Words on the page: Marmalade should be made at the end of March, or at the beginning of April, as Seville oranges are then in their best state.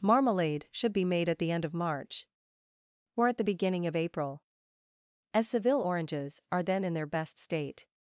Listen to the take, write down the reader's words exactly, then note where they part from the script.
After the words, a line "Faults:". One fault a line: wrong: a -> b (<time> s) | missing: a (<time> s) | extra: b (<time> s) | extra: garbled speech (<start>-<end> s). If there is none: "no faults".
Marmalade should be made at the end of March, or at the beginning of April, as Seville oranges are then in their best state.
Faults:
no faults